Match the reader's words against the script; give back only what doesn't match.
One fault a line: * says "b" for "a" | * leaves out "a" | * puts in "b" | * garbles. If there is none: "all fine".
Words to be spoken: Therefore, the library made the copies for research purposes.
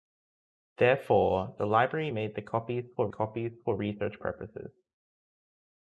* puts in "copies for"